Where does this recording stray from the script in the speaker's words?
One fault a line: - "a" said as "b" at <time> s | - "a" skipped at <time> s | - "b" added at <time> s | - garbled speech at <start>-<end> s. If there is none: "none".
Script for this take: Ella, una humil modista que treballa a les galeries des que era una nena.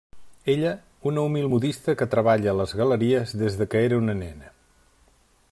none